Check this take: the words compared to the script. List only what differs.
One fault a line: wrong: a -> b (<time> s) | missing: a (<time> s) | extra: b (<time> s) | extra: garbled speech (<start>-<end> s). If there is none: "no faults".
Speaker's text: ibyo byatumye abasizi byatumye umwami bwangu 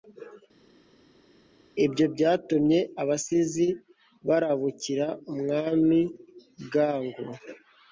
wrong: byatumye -> barabukira (4.3 s)